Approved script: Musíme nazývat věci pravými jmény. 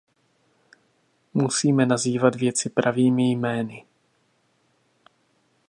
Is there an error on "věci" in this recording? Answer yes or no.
no